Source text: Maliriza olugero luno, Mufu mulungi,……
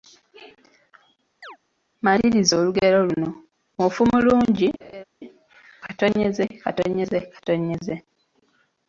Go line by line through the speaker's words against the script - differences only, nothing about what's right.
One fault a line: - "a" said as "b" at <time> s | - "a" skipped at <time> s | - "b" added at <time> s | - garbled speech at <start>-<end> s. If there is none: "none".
none